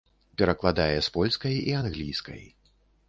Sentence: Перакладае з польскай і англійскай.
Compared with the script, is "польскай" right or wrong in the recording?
right